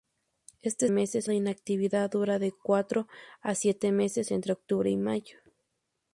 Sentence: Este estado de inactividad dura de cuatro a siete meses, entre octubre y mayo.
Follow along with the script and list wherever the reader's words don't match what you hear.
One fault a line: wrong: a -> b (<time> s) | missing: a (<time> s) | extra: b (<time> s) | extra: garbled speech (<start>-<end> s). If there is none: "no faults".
wrong: estado -> meses (0.9 s)